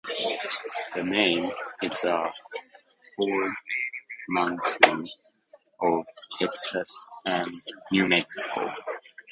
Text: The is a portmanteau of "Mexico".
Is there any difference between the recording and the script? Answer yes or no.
yes